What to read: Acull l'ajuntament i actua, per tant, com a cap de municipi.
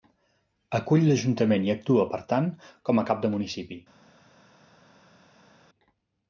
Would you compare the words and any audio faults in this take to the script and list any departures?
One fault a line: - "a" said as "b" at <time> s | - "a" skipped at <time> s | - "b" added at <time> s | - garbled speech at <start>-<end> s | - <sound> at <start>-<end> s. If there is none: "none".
none